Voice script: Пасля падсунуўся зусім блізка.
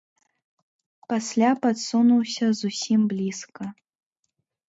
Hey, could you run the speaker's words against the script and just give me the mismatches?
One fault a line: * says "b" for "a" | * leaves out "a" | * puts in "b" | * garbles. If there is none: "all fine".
all fine